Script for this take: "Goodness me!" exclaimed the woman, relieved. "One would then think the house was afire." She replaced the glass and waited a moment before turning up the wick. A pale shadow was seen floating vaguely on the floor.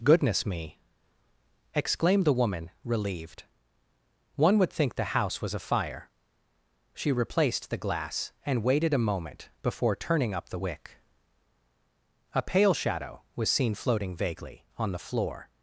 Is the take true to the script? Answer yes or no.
no